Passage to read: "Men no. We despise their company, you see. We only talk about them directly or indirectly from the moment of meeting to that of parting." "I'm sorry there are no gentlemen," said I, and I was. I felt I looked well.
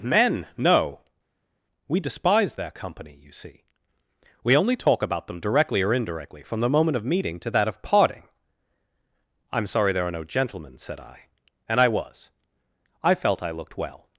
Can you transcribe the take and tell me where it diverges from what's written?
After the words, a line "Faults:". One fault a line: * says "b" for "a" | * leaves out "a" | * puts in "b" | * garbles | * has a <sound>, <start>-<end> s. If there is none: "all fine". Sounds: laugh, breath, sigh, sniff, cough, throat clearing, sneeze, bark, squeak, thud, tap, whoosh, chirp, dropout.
"Men no. We despise their company, you see. We only talk about them directly or indirectly from the moment of meeting to that of parting." "I'm sorry there are no gentlemen," said I, and I was. I felt I looked well.
Faults:
all fine